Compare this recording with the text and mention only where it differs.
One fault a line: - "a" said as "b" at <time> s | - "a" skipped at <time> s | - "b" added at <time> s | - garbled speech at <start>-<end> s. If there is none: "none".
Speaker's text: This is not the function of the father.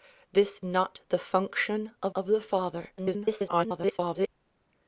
- "is" skipped at 0.6 s
- "of" added at 2.1 s
- garbled speech at 3.0-4.3 s